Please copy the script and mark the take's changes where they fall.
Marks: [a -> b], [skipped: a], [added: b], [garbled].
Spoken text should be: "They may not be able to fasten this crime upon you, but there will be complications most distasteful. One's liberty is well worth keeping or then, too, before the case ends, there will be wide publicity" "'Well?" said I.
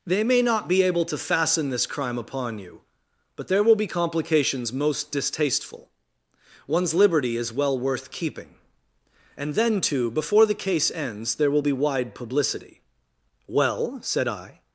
"They may not be able to fasten this crime upon you, but there will be complications most distasteful. One's liberty is well worth keeping [or -> and] then, too, before the case ends, there will be wide publicity" "'Well?" said I.